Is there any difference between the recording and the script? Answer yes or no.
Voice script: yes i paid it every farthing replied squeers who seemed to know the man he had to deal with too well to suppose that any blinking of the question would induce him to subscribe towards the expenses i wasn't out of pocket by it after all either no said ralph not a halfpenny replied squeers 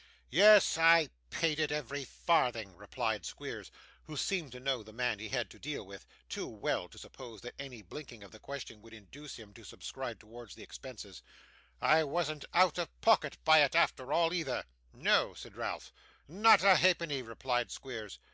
no